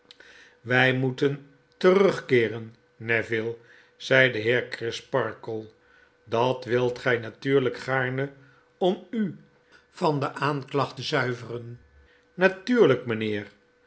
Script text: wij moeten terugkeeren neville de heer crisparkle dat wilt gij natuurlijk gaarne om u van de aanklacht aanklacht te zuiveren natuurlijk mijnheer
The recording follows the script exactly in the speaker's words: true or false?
false